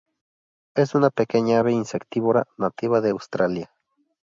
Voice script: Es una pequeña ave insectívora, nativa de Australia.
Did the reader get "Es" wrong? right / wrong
right